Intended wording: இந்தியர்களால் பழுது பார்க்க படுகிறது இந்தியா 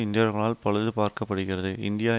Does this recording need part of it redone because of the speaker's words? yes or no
no